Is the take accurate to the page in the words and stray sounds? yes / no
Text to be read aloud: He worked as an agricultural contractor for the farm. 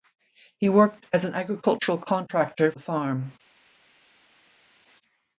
no